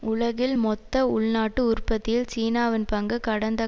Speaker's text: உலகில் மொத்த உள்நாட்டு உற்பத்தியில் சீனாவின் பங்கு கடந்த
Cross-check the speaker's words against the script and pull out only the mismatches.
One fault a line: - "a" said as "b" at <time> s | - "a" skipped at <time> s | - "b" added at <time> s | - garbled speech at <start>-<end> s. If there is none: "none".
none